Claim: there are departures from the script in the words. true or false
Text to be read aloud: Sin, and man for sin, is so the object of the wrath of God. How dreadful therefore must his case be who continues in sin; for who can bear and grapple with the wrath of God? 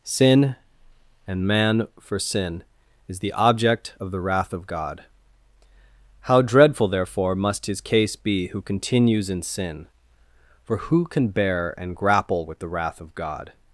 true